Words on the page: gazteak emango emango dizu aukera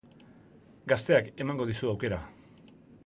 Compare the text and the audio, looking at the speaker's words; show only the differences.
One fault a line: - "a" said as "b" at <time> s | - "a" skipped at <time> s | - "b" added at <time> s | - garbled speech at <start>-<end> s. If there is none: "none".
- "emango" skipped at 1.7 s